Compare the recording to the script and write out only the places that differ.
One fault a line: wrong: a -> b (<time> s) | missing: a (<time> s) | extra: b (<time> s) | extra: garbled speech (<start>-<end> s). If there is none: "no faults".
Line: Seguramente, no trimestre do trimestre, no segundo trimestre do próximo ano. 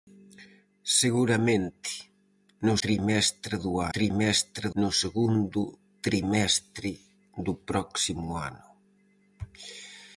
no faults